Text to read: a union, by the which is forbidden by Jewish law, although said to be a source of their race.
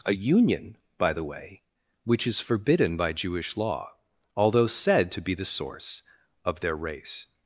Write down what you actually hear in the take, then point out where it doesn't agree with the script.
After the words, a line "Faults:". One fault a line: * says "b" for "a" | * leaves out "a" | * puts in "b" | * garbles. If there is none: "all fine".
a union, by the way, which is forbidden by Jewish law, although said to be the source of their race.
Faults:
* puts in "way"
* says "the" for "a"